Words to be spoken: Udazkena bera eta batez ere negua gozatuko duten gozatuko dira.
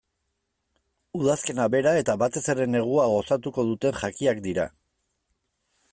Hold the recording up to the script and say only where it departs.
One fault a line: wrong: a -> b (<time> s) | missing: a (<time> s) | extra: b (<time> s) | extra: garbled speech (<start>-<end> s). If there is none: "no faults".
wrong: gozatuko -> jakiak (4.0 s)